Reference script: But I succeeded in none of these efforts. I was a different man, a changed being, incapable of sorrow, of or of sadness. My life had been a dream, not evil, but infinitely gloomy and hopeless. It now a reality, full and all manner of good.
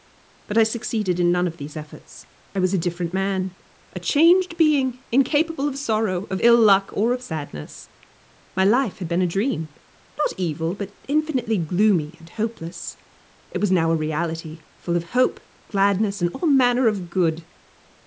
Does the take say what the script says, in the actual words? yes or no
no